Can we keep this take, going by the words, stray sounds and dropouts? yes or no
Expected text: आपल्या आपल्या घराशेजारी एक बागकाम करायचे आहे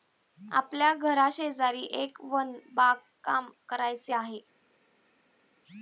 no